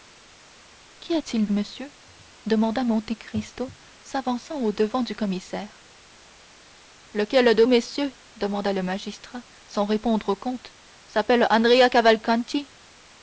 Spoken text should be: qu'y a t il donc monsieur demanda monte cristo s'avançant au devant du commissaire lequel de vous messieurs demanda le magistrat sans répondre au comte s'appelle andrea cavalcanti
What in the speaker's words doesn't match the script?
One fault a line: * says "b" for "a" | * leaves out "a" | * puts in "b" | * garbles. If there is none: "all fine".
* leaves out "donc"
* leaves out "vous"